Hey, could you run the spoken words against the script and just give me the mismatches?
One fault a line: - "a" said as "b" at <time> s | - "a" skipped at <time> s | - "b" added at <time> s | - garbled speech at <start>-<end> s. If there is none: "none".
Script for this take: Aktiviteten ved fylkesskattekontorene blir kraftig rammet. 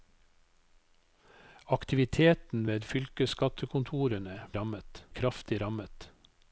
- "blir" said as "rammet" at 4.5 s